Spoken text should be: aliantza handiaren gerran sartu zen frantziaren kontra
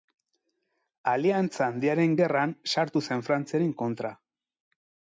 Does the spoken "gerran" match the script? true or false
true